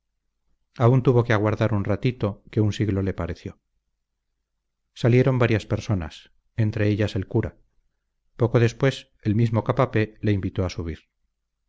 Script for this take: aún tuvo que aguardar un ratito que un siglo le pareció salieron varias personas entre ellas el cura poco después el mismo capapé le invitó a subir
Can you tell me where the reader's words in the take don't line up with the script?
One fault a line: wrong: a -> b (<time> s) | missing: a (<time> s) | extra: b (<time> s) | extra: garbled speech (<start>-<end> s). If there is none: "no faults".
no faults